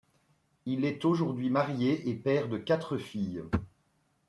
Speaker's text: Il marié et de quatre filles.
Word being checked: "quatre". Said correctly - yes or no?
yes